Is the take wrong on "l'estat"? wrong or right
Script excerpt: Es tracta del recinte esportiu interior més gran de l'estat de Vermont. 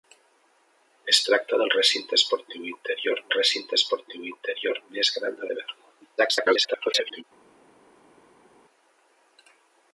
wrong